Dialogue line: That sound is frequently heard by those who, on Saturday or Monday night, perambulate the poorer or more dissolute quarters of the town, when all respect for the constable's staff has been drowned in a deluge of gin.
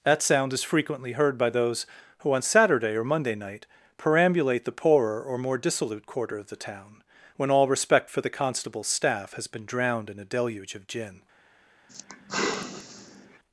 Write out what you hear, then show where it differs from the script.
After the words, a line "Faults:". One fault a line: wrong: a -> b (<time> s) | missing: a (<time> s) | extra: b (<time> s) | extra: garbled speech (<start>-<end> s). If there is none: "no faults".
That sound is frequently heard by those who, on Saturday or Monday night, perambulate the poorer or more dissolute quarter of the town, when all respect for the constable's staff has been drowned in a deluge of gin.
Faults:
wrong: quarters -> quarter (6.1 s)